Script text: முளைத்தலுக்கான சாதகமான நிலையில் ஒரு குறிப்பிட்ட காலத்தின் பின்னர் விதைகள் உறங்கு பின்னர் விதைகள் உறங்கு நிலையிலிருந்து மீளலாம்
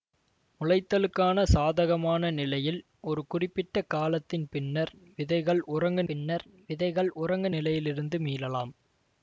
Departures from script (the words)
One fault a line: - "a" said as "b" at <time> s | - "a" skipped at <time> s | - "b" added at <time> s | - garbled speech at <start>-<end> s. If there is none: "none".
none